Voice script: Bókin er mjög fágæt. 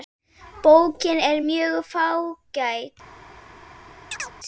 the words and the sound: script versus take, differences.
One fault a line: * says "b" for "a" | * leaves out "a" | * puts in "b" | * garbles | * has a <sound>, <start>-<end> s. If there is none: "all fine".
* has a chirp, 4.1-4.3 s